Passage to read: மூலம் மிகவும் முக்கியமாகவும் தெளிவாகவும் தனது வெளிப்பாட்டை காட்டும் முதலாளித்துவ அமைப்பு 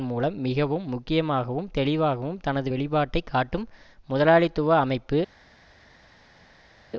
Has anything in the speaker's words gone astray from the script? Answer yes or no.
no